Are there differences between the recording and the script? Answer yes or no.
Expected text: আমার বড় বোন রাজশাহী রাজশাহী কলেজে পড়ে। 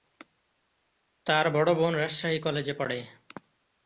yes